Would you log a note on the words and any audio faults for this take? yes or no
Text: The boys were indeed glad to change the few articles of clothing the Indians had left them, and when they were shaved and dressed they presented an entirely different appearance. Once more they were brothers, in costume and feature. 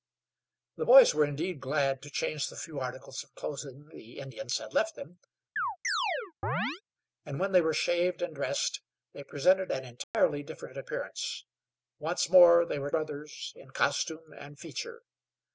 yes